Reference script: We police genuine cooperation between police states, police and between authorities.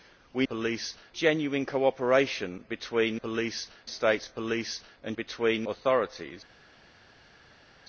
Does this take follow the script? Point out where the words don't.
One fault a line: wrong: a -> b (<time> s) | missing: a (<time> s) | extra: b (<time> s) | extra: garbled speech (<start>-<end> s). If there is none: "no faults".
no faults